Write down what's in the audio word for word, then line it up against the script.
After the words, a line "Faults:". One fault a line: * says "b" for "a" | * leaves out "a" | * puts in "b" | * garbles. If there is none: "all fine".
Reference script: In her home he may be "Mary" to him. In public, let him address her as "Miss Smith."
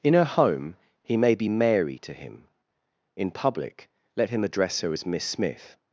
In her home he may be "Mary" to him. In public, let him address her as "Miss Smith."
Faults:
all fine